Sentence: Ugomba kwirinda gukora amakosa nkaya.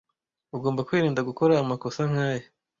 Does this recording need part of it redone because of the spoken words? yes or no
no